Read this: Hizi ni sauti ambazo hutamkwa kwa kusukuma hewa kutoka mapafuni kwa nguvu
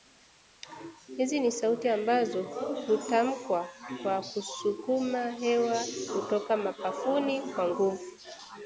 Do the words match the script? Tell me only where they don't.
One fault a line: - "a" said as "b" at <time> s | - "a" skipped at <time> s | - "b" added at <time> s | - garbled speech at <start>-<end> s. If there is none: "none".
none